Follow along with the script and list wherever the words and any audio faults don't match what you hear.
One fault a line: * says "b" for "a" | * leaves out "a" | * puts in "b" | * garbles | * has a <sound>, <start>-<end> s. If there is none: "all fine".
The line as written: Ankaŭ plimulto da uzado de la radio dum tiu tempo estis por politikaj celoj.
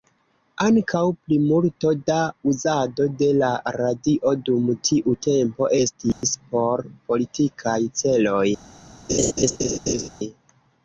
* has a dropout, 6.1-6.2 s
* has a laugh, 9.1-10.1 s